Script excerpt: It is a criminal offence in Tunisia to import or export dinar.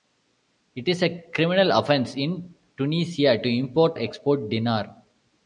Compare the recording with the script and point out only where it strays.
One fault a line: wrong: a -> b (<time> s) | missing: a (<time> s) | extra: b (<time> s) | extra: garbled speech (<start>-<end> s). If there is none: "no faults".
missing: or (4.0 s)